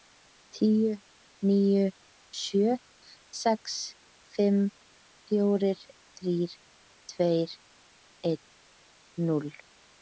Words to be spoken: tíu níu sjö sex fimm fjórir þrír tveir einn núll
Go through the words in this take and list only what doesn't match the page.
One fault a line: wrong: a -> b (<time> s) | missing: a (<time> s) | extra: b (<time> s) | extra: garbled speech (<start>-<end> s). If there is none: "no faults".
no faults